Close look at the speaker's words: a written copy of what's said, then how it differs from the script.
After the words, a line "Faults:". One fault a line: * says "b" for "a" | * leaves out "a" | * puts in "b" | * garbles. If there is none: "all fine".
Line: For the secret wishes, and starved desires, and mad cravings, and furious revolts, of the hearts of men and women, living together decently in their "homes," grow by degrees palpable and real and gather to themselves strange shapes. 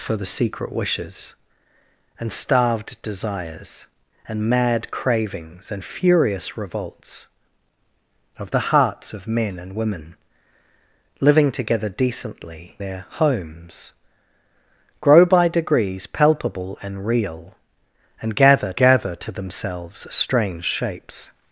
For the secret wishes, and starved desires, and mad cravings, and furious revolts, of the hearts of men and women, living together decently their "homes," grow by degrees palpable and real and gather gather to themselves strange shapes.
Faults:
* leaves out "in"
* puts in "gather"